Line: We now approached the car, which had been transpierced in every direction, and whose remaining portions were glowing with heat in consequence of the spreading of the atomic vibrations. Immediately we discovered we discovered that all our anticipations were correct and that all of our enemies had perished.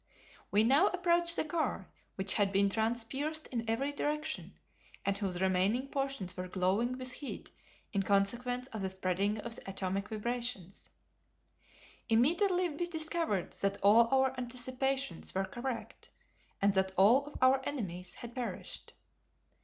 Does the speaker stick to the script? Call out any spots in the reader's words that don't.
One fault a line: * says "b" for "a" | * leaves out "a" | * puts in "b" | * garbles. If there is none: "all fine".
* leaves out "we discovered"